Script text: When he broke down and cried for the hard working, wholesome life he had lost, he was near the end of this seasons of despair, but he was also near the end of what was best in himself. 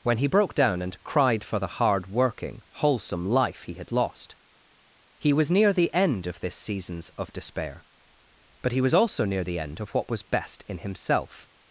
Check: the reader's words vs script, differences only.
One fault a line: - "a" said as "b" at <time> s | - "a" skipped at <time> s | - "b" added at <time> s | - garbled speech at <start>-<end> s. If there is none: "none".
none